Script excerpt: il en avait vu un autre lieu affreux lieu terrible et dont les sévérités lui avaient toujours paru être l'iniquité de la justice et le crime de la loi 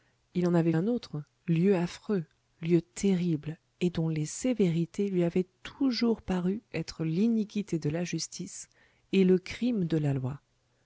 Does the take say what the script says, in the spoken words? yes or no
no